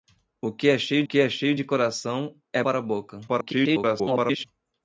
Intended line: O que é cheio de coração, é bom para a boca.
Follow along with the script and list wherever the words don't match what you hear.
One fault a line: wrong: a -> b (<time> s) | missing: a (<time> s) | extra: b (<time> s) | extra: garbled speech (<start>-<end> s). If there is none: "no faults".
extra: que é cheio (1.0 s)
missing: bom (2.6 s)
extra: garbled speech (3.3-4.4 s)